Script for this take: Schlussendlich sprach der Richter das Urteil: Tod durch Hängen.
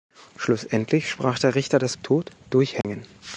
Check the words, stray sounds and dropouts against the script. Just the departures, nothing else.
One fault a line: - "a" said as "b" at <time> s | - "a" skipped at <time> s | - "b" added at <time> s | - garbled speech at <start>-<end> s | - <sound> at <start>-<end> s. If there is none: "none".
- "Urteil" skipped at 1.9 s
- dropout at 2.8-2.8 s